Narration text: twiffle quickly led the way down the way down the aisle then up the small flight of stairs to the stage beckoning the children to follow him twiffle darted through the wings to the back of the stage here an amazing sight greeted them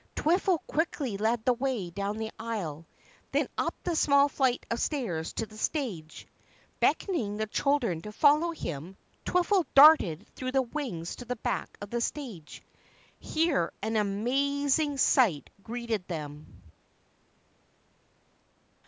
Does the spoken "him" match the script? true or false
true